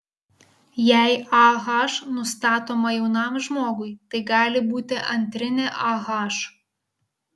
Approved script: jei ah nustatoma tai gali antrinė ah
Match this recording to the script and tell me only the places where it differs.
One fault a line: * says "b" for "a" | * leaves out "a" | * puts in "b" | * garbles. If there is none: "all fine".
* puts in "jaunam žmogui"
* puts in "būti"